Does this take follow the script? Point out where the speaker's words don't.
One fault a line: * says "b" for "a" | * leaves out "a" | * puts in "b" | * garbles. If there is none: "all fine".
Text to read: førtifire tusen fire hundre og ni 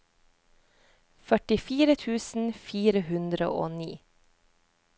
all fine